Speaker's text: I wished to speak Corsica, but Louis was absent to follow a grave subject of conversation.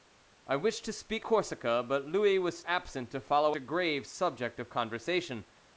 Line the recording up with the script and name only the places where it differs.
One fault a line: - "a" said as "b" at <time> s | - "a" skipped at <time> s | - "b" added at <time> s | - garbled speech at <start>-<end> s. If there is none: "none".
none